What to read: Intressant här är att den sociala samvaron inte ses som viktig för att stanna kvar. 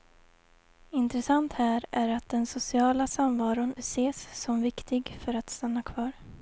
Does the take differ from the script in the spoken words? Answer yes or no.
yes